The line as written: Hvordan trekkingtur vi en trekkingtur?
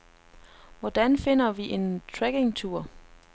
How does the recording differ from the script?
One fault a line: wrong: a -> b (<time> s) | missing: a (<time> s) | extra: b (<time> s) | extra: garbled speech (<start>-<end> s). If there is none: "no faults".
wrong: trekkingtur -> finder (1.2 s)